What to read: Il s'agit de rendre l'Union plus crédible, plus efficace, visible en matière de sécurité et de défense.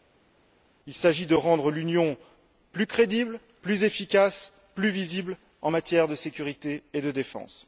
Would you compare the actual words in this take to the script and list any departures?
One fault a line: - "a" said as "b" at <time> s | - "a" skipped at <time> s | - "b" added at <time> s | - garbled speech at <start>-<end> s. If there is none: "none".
- "plus" added at 4.7 s